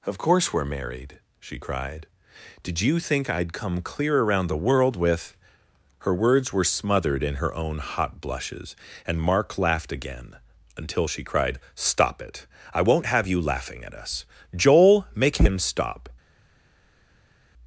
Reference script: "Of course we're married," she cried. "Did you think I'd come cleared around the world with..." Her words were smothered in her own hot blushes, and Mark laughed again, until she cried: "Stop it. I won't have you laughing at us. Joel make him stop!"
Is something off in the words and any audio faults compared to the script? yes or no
yes